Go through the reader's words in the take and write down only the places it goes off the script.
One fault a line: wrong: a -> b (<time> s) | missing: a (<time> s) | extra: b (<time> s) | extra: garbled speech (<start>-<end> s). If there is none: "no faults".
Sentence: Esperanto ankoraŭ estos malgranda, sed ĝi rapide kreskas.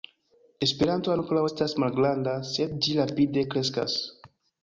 wrong: estos -> estas (1.4 s)